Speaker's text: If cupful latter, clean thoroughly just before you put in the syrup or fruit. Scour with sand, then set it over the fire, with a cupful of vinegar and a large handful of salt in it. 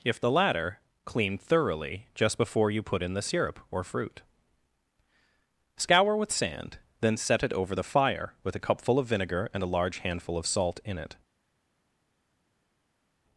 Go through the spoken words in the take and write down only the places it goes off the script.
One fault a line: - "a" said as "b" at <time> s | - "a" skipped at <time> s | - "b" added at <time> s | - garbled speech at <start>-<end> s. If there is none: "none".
- "cupful" said as "the" at 0.2 s